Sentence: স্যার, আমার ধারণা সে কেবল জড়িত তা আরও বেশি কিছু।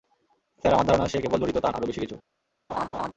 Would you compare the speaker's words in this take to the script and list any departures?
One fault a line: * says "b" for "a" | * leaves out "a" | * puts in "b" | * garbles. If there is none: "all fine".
all fine